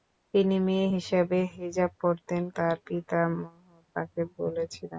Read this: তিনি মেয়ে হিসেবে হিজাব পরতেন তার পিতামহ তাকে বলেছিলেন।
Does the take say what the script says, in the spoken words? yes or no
yes